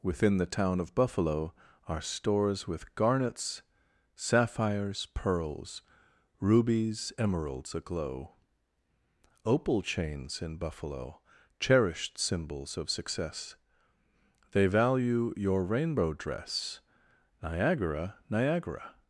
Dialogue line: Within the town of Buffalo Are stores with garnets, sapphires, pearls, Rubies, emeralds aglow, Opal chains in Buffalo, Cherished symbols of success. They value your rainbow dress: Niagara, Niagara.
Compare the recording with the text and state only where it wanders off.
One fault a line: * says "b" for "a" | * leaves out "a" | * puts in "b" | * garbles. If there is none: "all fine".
all fine